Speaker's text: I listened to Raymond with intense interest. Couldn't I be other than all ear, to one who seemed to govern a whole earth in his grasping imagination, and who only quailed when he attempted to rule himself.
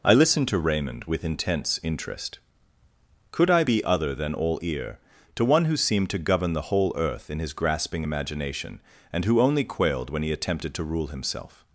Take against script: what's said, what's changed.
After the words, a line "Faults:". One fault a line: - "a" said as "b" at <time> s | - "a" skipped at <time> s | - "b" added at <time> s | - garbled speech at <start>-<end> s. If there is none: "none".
I listened to Raymond with intense interest. Could I be other than all ear, to one who seemed to govern the whole earth in his grasping imagination, and who only quailed when he attempted to rule himself.
Faults:
- "Couldn't" said as "Could" at 3.3 s
- "a" said as "the" at 6.5 s